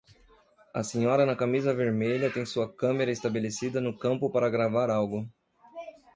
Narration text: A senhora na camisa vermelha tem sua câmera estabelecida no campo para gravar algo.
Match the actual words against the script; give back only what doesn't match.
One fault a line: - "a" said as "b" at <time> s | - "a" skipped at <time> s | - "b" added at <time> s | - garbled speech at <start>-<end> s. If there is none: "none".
none